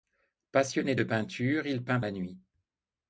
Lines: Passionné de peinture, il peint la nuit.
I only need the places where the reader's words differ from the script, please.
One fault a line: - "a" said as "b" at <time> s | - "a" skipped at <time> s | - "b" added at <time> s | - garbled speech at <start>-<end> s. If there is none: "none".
none